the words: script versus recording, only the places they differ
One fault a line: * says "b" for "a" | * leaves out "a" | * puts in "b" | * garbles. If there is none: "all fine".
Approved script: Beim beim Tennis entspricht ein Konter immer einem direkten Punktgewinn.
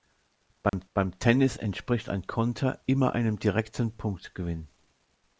all fine